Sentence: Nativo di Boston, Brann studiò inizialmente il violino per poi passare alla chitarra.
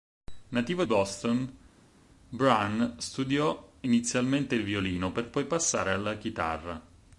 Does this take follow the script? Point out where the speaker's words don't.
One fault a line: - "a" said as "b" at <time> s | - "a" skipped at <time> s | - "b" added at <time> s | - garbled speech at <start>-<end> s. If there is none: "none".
- "di" skipped at 0.8 s